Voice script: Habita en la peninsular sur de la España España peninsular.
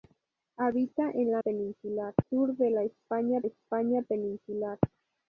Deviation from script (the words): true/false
false